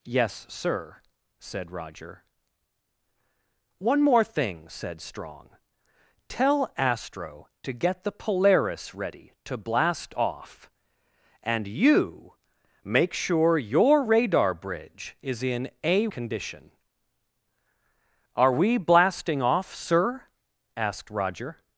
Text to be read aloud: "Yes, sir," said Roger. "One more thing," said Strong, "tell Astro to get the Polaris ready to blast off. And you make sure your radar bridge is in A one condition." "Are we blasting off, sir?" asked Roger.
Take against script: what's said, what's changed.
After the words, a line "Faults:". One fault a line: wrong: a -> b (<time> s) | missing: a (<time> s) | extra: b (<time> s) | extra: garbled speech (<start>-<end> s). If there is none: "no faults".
"Yes, sir," said Roger. "One more thing," said Strong, "tell Astro to get the Polaris ready to blast off. And you make sure your radar bridge is in A condition." "Are we blasting off, sir?" asked Roger.
Faults:
missing: one (16.1 s)